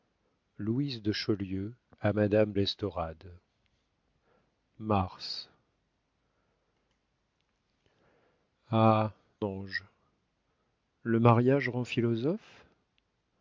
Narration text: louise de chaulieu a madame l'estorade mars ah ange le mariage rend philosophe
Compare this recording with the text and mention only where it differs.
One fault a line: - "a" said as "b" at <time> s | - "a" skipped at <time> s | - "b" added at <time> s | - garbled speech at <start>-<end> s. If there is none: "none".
none